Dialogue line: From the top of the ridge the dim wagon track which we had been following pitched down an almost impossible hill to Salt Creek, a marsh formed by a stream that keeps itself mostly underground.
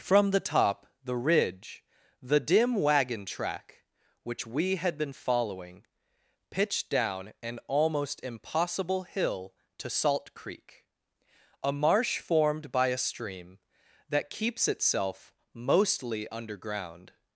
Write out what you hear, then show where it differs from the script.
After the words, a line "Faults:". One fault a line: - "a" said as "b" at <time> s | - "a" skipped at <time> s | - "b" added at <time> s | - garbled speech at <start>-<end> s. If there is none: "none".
From the top the ridge the dim wagon track which we had been following pitched down an almost impossible hill to Salt Creek, a marsh formed by a stream that keeps itself mostly underground.
Faults:
- "of" skipped at 0.9 s